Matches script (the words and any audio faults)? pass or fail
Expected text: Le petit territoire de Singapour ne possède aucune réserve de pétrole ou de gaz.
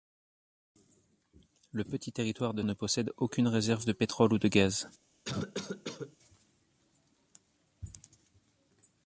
fail